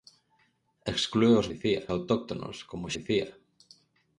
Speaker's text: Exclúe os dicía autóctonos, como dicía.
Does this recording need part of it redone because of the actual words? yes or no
no